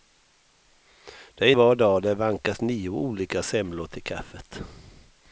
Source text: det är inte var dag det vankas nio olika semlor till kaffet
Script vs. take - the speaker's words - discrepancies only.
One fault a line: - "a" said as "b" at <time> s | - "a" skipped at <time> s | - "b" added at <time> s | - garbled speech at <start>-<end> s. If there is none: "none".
- "inte" skipped at 1.5 s